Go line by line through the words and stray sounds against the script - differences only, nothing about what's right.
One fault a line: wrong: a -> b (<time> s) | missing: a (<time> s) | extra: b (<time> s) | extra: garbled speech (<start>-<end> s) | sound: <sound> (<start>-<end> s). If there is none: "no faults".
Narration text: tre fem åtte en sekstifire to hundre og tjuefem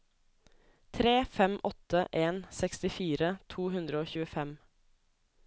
no faults